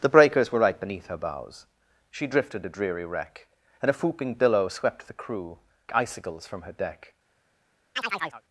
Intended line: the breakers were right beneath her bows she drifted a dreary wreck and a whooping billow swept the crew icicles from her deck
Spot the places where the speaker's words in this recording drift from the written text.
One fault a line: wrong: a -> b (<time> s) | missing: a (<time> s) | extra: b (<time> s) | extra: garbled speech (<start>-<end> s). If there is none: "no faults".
no faults